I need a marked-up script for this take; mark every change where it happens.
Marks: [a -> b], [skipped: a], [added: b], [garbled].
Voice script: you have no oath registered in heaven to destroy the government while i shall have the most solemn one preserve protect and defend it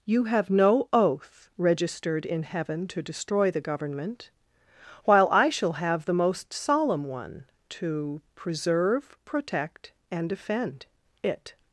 you have no oath registered in heaven to destroy the government while i shall have the most solemn one [added: to] preserve protect and defend it